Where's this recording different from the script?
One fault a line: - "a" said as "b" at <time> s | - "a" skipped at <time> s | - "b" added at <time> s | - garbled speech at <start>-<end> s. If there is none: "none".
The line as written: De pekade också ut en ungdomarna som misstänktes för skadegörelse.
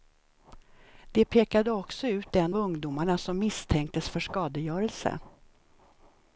none